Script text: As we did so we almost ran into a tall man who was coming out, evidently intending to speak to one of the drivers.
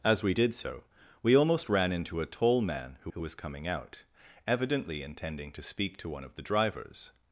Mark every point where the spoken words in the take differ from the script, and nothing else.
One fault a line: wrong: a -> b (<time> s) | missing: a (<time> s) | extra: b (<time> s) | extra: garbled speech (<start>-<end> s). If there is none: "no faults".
extra: who (3.1 s)